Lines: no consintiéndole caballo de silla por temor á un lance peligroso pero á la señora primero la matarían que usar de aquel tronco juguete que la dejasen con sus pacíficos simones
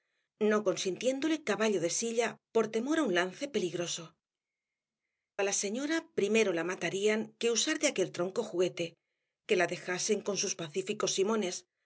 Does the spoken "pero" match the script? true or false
false